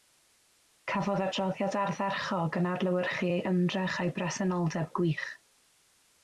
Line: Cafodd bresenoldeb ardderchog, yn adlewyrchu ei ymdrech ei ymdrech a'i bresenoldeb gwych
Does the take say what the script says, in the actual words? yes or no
no